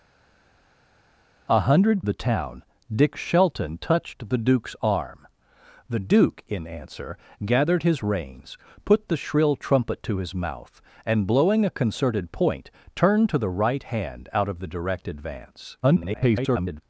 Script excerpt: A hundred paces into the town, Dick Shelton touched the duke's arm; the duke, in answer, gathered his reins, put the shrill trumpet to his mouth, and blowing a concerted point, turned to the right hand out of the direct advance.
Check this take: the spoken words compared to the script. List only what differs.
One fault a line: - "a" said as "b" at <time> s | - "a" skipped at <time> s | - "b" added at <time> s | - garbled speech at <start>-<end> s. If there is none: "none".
- "paces into" skipped at 2.0 s
- garbled speech at 15.8-16.8 s